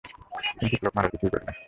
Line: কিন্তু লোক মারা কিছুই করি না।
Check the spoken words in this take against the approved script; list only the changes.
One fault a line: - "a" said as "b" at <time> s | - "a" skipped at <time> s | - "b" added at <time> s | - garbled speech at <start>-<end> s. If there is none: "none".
none